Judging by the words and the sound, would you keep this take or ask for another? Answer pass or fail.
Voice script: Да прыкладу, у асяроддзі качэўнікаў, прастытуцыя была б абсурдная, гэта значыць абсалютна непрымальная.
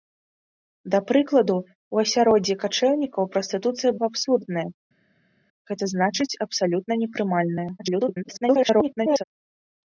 fail